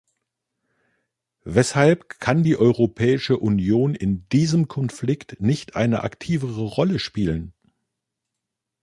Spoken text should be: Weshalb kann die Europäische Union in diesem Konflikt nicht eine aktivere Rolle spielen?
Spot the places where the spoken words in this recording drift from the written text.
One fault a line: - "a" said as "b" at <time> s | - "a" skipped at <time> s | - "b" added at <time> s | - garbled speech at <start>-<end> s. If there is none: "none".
none